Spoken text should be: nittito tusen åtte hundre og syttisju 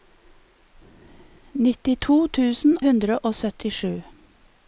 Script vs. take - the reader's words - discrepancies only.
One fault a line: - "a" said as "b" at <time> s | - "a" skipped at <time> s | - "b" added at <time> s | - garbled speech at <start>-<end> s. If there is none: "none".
- "åtte" skipped at 2.7 s